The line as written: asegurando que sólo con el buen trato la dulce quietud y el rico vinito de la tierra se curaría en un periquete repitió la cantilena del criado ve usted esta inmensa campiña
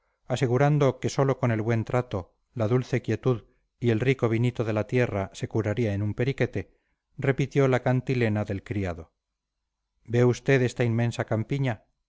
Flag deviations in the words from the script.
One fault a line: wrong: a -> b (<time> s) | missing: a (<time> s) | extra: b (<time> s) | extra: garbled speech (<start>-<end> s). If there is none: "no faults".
no faults